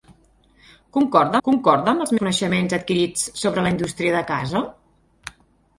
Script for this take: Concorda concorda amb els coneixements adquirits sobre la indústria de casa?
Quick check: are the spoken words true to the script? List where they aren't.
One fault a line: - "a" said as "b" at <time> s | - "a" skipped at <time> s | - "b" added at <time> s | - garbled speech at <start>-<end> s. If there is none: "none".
none